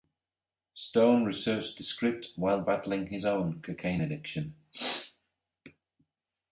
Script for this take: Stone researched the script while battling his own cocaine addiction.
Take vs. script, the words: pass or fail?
pass